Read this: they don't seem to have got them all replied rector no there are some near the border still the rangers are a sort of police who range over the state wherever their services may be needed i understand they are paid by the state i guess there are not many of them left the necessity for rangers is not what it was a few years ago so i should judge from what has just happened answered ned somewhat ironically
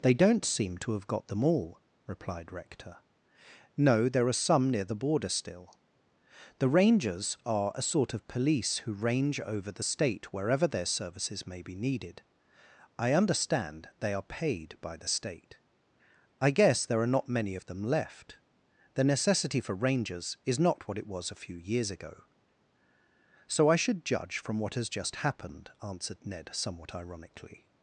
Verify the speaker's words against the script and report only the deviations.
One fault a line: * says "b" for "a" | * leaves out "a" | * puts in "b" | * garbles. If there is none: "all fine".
all fine